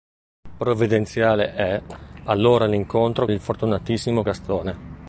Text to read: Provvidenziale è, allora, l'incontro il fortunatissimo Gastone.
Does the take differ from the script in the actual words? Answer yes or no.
no